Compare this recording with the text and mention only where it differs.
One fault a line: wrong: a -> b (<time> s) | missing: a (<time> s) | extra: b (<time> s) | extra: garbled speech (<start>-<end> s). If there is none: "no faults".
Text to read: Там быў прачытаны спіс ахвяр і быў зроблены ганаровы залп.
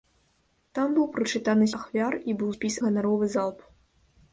missing: спіс (1.7 s)
wrong: зроблены -> спіс (2.5 s)